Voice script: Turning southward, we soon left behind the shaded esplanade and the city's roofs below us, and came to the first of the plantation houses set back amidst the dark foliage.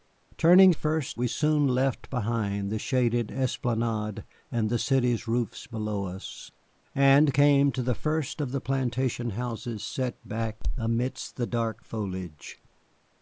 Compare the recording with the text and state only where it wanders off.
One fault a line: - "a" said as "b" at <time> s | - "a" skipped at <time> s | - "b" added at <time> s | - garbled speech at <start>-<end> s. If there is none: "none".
- "southward" said as "first" at 0.7 s